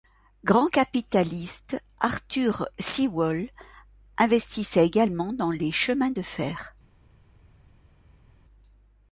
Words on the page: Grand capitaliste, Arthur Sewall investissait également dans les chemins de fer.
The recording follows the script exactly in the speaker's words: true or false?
true